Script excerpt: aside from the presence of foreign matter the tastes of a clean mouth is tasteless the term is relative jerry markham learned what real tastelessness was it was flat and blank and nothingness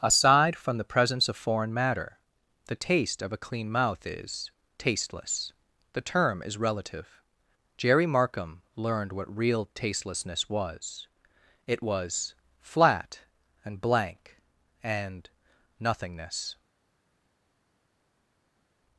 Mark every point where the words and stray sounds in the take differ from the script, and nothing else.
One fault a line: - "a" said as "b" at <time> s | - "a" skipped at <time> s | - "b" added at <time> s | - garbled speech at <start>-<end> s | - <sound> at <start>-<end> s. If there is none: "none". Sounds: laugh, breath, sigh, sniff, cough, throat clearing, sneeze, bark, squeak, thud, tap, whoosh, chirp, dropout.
- "tastes" said as "taste" at 2.8 s